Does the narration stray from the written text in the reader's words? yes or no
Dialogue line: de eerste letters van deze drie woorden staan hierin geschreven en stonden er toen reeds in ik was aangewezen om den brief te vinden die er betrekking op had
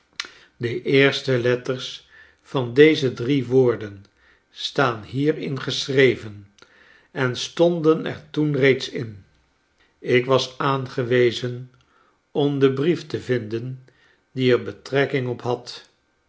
no